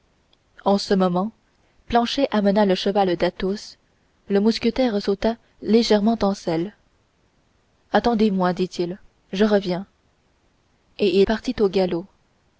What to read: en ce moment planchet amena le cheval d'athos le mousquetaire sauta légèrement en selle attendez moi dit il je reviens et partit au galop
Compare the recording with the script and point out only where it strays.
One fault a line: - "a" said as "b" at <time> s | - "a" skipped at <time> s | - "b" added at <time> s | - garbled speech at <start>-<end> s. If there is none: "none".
none